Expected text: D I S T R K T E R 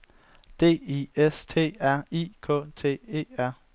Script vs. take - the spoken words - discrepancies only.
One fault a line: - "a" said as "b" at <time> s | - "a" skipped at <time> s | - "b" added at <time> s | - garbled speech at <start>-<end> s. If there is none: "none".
- "I" added at 2.1 s